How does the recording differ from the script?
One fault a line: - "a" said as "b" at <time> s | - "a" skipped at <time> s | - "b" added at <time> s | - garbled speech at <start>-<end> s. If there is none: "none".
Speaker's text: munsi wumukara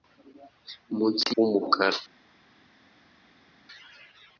none